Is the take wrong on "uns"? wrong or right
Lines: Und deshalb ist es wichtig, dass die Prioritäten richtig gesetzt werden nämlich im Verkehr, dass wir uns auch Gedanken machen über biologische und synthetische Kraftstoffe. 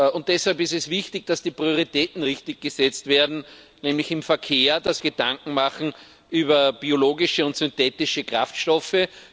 wrong